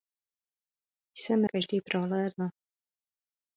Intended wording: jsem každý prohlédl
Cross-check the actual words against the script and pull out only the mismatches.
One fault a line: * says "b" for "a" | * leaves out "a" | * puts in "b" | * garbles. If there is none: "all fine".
all fine